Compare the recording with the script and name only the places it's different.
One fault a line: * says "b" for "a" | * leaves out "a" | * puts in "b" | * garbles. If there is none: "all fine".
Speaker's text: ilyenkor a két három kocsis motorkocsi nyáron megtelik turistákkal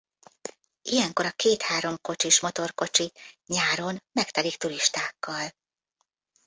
all fine